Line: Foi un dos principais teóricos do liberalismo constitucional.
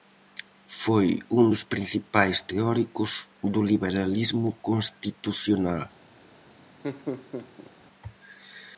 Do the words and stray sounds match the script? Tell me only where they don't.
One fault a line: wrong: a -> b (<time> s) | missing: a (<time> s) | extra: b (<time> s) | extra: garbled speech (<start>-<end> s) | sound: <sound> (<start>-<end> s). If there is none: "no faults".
sound: laugh (6.8-7.7 s)